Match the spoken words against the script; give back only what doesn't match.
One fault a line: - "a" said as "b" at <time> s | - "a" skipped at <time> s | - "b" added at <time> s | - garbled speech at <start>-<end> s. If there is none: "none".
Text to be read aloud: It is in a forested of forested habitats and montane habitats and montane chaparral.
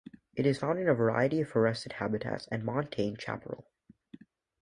- "found" added at 0.5 s
- "forested" said as "variety" at 0.9 s
- "habitats and montane" skipped at 3.2 s